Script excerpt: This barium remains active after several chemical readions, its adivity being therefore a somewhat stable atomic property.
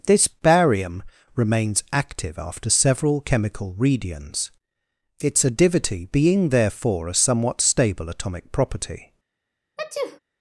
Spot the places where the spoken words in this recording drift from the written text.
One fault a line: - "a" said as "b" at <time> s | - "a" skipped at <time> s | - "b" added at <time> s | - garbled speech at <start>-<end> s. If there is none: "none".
none